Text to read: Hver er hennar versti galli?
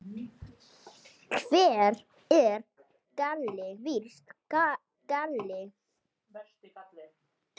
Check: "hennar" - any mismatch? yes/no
yes